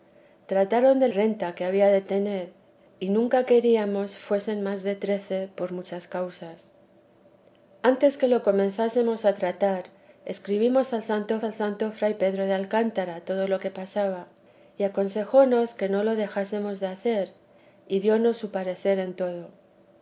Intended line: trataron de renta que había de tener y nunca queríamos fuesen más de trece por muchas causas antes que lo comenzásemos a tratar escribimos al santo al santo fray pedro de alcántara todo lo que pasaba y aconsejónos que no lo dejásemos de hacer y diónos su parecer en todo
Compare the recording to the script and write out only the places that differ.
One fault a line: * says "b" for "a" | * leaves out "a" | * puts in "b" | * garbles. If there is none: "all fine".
all fine